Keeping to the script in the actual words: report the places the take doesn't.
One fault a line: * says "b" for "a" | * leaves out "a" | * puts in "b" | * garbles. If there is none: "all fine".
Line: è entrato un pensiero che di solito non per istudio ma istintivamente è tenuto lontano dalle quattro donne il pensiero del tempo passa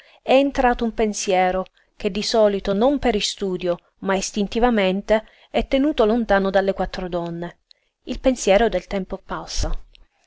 all fine